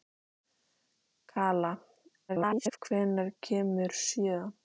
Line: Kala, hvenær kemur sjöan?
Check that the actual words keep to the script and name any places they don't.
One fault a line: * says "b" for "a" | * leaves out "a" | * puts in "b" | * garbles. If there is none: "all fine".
* garbles